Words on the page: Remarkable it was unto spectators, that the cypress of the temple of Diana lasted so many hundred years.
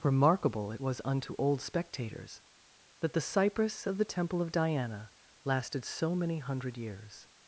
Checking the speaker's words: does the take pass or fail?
fail